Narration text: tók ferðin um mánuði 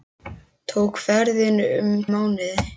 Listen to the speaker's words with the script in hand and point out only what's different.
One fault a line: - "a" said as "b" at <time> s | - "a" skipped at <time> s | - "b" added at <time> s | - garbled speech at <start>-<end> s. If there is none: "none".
none